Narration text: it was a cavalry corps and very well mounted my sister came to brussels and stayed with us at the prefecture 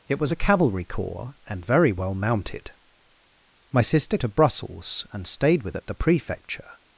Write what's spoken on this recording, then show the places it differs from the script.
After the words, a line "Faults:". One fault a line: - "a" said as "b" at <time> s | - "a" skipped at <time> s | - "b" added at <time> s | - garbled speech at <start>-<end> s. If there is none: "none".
it was a cavalry corps and very well mounted my sister to brussels and stayed with at the prefecture
Faults:
- "came" skipped at 4.2 s
- "us" skipped at 5.8 s